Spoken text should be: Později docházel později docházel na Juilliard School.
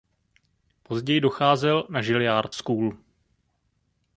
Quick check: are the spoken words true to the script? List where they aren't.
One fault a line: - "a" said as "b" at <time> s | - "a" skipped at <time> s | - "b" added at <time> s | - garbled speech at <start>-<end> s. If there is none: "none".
- "později docházel" skipped at 1.9 s